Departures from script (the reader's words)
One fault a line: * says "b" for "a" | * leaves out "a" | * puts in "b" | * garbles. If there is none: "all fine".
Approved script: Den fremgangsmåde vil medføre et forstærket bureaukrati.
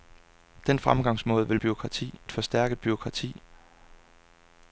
* says "bureaukrati" for "medføre"